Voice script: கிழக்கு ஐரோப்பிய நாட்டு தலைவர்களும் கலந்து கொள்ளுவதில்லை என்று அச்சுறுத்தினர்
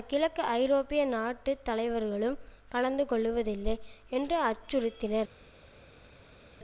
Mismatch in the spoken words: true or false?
false